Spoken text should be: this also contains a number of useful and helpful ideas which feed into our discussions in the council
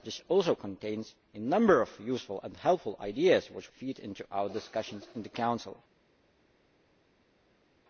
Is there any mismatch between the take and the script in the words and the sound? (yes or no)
no